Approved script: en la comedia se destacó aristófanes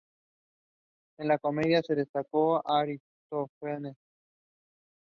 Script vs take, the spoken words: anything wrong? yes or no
no